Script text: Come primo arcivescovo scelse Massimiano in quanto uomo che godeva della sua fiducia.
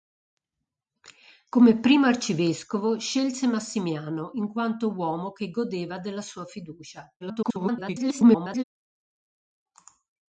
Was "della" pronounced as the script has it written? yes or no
yes